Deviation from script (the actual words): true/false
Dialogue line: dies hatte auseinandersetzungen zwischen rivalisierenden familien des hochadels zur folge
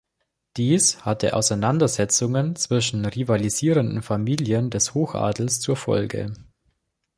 false